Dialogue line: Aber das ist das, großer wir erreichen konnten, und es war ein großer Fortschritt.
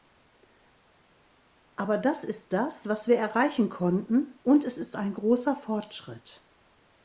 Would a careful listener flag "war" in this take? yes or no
yes